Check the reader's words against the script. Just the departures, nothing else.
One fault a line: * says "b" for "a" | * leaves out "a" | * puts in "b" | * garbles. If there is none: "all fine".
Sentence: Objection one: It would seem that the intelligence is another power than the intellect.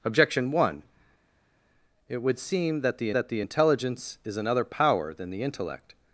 * puts in "that the"